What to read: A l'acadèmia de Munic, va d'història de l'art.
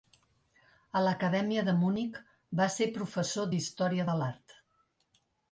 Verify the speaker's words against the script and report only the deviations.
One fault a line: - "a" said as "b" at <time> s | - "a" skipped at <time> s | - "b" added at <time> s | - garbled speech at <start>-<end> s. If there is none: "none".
- "ser professor" added at 2.8 s